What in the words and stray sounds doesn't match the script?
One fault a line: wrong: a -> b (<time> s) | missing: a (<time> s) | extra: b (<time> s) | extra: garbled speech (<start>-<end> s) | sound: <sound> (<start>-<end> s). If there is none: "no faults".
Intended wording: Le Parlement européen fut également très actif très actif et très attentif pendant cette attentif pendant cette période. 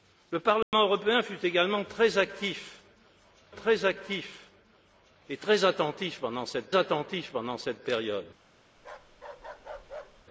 sound: dropout (0.6-0.7 s)
sound: bark (8.8-10.3 s)